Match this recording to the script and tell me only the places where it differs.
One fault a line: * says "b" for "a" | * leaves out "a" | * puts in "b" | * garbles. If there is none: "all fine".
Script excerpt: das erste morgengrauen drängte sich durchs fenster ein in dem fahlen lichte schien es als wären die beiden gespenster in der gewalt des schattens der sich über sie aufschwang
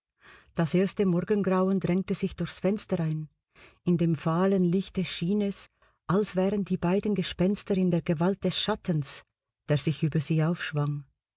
all fine